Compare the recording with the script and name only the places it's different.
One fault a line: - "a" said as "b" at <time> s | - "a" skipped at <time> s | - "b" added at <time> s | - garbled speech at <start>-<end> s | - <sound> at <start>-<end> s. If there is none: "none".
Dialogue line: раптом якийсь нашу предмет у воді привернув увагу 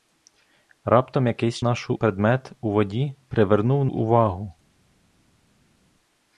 none